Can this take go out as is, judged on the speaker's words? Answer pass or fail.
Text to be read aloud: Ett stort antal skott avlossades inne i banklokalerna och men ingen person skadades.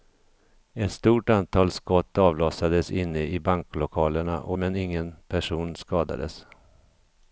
pass